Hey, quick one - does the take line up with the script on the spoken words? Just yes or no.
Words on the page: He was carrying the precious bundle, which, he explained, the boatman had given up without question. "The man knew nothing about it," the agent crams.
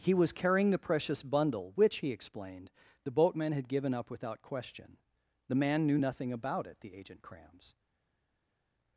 yes